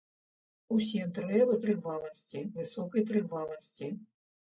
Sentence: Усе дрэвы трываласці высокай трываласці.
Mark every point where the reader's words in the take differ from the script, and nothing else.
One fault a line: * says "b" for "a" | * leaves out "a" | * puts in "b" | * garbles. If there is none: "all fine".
all fine